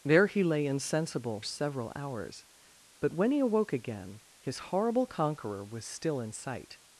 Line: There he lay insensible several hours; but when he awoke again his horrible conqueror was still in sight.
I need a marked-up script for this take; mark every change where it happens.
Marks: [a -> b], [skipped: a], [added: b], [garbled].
There he lay insensible several hours; but when he awoke again his horrible conqueror was still in sight.